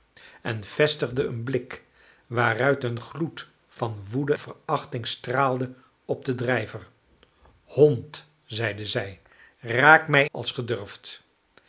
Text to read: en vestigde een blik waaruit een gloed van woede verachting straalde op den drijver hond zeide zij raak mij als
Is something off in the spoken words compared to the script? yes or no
no